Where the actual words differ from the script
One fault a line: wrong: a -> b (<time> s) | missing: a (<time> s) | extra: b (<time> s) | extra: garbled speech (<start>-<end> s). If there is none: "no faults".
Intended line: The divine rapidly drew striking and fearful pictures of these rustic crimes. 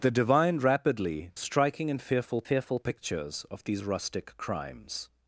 missing: drew (1.3 s)
extra: fearful (2.4 s)